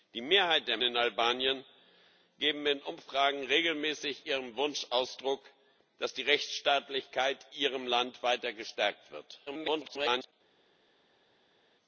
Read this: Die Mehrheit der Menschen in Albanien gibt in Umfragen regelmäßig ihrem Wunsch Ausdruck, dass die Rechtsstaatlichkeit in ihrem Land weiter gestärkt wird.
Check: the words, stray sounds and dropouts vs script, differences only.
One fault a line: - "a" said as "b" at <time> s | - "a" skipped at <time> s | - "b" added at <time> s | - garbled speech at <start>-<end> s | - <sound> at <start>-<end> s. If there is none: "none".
- "Menschen" skipped at 0.8 s
- "in" skipped at 7.5 s
- garbled speech at 9.5-10.3 s